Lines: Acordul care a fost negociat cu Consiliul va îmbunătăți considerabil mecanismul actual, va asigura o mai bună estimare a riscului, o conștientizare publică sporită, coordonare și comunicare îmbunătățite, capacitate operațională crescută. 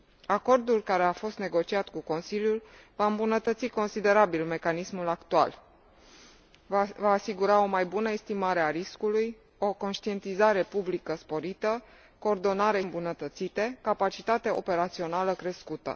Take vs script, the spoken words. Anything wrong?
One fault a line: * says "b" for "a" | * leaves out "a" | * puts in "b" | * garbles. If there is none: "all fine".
* leaves out "și comunicare"